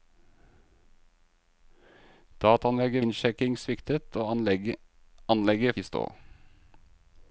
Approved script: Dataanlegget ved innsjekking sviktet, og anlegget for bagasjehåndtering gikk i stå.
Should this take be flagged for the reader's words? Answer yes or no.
yes